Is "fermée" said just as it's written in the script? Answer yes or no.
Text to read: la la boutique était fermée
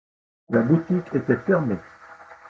yes